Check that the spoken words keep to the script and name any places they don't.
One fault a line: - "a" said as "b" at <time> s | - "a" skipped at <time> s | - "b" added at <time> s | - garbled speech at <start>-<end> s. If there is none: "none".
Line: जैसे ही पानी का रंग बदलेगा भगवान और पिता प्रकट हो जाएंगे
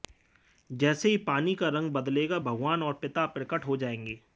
none